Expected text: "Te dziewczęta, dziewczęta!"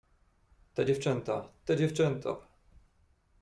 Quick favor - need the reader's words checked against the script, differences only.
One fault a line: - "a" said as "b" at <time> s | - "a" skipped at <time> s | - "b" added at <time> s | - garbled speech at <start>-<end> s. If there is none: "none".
- "te" added at 1.7 s